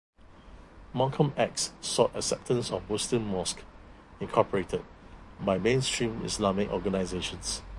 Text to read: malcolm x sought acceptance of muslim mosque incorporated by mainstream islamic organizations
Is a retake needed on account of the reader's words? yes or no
no